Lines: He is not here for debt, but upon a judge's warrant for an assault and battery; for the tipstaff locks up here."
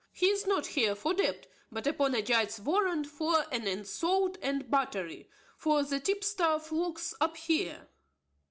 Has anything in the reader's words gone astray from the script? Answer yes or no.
no